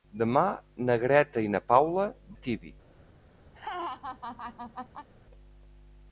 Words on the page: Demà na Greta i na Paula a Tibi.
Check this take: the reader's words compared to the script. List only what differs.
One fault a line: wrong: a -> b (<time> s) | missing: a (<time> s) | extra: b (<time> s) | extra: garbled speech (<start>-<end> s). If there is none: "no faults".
no faults